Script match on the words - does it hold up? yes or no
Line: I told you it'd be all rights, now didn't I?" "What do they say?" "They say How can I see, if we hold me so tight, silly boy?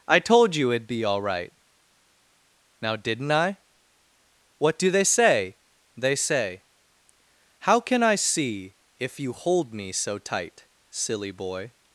no